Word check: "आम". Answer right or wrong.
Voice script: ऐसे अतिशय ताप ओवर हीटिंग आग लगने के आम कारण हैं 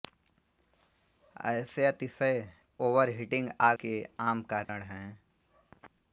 right